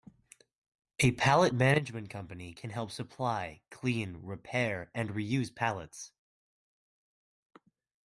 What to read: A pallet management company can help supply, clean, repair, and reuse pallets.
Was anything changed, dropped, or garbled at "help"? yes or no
no